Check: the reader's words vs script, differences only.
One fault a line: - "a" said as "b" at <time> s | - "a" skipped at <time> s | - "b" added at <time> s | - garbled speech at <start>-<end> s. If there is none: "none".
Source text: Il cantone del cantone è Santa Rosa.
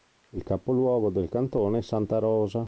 - "cantone" said as "capoluogo" at 0.4 s